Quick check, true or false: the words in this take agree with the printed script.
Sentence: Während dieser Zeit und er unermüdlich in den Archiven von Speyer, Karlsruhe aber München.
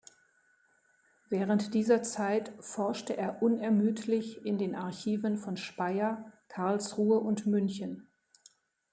false